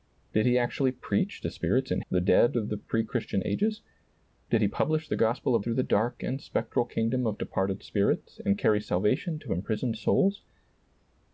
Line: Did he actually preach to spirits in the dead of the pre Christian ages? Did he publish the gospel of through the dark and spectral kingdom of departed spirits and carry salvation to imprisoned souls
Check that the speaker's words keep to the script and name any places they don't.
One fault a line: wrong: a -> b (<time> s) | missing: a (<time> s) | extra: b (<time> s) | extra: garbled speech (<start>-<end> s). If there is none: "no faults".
no faults